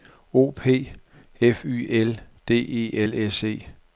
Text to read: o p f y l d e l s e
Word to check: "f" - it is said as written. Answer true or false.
true